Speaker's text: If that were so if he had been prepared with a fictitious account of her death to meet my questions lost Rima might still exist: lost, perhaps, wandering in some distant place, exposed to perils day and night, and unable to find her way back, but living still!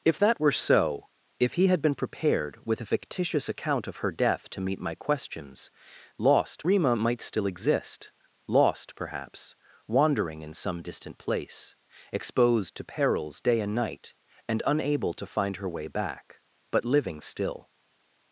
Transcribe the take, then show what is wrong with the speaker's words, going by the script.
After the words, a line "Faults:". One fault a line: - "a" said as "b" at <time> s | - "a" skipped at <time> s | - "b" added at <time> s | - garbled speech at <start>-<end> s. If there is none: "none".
If that were so if he had been prepared with a fictitious account of her death to meet my questions lost Rima might still exist: lost, perhaps, wandering in some distant place, exposed to perils day and night, and unable to find her way back, but living still!
Faults:
none